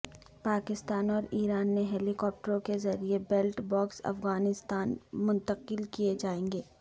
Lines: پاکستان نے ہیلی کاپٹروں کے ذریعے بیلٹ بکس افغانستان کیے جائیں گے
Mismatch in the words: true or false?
true